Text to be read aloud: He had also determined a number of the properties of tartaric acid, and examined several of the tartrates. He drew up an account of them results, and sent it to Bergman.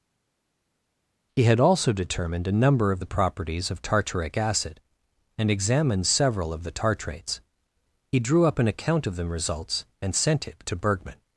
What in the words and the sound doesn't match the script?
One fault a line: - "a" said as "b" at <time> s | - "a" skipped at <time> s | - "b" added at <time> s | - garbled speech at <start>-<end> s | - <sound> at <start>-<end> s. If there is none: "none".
none